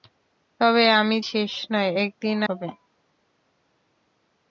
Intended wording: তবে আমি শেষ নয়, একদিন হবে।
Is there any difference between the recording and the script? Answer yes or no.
no